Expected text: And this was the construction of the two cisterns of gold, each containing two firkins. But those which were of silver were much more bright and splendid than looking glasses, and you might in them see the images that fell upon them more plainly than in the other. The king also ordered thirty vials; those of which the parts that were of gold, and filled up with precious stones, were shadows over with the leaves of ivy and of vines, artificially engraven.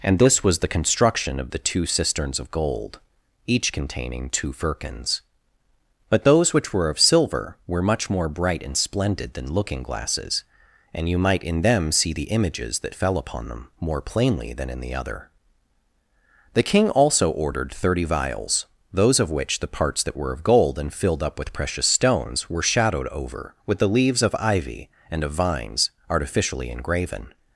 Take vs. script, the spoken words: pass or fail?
fail